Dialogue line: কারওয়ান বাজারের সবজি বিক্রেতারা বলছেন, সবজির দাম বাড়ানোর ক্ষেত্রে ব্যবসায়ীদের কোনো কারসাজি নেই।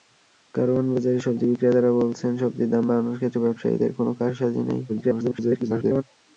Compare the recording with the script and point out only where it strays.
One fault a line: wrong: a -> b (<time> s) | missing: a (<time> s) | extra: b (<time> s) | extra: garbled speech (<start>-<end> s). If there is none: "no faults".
extra: garbled speech (4.9-6.0 s)